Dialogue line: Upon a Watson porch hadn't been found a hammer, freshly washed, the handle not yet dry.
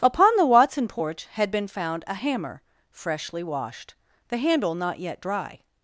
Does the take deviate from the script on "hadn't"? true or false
true